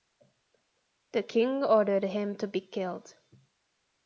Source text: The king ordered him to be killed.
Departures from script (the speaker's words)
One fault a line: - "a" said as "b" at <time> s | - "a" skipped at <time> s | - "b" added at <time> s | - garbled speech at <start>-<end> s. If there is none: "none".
none